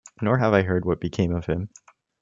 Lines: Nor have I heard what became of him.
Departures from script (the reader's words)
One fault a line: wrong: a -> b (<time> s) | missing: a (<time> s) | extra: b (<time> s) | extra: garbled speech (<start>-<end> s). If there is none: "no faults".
no faults